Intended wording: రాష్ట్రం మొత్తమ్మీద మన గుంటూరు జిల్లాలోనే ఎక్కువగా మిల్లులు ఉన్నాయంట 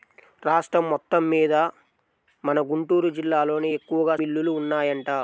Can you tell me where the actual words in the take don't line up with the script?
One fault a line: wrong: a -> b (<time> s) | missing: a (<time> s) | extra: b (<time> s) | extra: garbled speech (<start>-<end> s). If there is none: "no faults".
no faults